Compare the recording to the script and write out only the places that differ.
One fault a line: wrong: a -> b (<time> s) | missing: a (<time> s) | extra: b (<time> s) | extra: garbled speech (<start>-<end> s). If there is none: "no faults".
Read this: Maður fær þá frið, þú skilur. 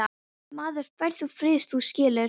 no faults